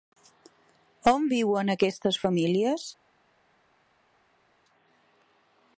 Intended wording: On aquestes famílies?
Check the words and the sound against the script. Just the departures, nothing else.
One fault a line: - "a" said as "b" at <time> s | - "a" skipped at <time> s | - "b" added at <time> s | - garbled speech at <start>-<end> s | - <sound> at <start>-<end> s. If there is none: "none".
- "viuen" added at 1.3 s